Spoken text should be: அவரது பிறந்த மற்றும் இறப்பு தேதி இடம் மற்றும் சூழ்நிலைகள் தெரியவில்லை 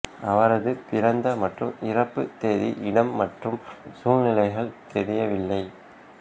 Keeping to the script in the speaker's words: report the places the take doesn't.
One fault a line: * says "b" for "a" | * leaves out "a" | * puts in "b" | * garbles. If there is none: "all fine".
all fine